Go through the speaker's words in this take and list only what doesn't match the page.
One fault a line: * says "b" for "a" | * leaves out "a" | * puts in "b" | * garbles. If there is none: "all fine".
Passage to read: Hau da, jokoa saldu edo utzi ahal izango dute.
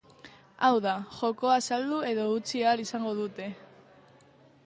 all fine